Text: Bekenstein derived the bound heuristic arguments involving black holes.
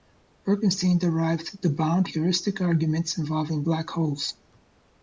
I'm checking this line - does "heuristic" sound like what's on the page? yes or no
yes